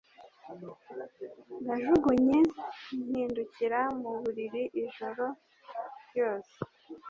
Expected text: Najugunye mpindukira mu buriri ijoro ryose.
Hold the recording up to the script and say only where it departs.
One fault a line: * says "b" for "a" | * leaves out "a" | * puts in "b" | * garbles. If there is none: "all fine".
all fine